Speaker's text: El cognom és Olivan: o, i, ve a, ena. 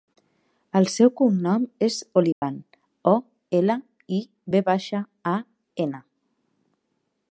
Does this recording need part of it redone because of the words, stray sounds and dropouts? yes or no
yes